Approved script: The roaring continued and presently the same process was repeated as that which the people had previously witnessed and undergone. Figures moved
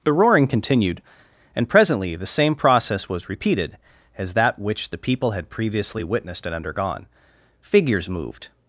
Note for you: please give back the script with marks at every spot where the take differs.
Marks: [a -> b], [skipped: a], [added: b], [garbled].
The roaring continued and presently the same process was repeated as that which the people had previously witnessed and undergone. Figures moved